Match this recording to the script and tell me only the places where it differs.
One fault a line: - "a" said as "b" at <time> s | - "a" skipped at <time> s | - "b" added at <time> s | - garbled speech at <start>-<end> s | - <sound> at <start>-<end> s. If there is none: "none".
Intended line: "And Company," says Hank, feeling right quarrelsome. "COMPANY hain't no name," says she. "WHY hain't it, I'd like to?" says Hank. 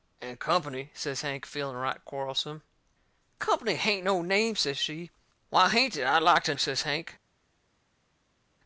none